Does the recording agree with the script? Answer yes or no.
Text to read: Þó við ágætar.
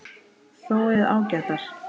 yes